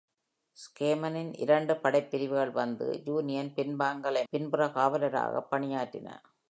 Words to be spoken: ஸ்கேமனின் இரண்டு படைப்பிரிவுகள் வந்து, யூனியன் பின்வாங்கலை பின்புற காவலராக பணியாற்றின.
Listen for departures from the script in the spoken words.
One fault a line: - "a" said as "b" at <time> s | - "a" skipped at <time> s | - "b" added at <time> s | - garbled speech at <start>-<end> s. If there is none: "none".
none